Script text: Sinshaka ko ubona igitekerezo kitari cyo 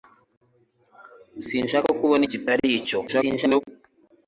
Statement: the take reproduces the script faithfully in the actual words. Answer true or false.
false